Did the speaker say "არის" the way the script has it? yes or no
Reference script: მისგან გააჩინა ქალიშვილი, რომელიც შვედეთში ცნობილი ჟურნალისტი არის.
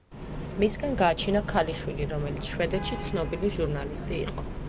no